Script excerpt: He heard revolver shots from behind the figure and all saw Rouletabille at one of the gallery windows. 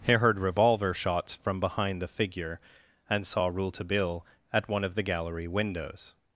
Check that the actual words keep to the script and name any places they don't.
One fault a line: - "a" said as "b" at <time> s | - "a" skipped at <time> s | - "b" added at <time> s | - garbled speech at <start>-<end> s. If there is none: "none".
- "all" skipped at 3.3 s